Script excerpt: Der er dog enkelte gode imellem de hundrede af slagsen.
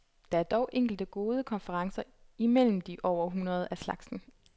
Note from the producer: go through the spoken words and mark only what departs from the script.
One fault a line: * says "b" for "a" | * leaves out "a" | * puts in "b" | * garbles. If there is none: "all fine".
* puts in "konferencer"
* puts in "over"